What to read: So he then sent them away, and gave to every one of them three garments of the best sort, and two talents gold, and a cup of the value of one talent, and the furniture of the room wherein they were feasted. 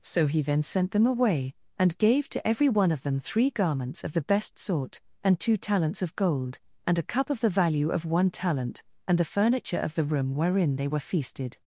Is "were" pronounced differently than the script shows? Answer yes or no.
no